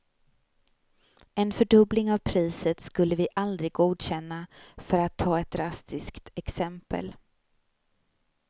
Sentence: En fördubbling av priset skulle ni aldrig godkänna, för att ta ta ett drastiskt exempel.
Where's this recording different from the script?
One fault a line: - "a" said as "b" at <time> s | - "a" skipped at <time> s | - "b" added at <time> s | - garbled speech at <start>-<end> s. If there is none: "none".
- "ni" said as "vi" at 3.1 s
- "ta" skipped at 5.4 s